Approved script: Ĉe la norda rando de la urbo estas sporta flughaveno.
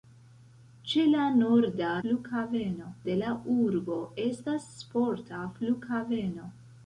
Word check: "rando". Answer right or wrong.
wrong